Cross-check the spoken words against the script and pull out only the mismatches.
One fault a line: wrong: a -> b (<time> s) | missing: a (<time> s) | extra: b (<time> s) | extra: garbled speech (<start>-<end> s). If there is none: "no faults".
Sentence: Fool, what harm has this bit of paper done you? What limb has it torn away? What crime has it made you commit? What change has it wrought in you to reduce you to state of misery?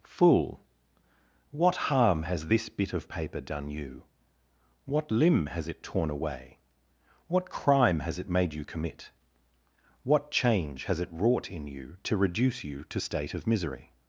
no faults